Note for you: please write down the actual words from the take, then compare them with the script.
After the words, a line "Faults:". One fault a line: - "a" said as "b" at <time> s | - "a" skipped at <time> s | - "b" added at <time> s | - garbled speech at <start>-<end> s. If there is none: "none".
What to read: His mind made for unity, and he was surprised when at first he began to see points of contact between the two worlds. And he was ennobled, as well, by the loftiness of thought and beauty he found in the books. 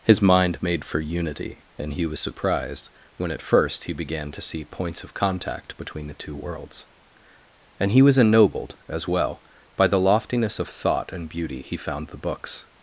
His mind made for unity, and he was surprised when at first he began to see points of contact between the two worlds. And he was ennobled, as well, by the loftiness of thought and beauty he found the books.
Faults:
- "in" skipped at 12.1 s